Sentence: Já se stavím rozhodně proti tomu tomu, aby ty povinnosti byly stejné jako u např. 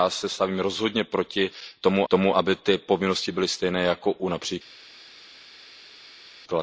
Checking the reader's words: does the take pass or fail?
pass